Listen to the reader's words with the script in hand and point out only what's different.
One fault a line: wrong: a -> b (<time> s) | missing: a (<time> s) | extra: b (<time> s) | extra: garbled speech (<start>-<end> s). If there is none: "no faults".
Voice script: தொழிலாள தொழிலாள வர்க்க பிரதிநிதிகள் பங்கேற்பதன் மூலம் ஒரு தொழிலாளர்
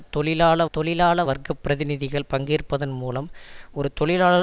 no faults